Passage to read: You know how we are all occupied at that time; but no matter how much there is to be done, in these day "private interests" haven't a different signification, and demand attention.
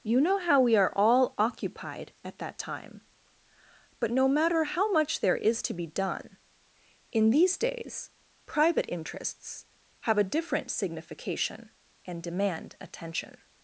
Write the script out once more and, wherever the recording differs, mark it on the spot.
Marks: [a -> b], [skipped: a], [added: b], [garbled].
You know how we are all occupied at that time; but no matter how much there is to be done, in these [day -> days] "private interests" [haven't -> have] a different signification, and demand attention.